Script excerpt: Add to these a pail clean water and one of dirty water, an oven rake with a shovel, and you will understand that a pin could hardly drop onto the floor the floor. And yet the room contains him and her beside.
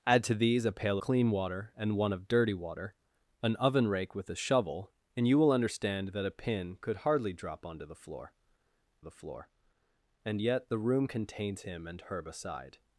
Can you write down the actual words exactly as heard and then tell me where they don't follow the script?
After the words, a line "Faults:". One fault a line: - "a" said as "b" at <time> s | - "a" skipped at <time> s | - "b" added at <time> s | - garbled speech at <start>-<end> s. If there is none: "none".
Add to these a pail clean water and one of dirty water, an oven rake with a shovel, and you will understand that a pin could hardly drop onto the floor the floor. And yet the room contains him and her beside.
Faults:
none